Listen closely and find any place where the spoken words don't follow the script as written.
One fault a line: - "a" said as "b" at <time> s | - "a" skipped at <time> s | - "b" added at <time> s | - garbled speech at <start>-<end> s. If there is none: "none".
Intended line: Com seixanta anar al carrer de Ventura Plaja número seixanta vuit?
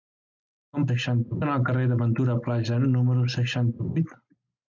none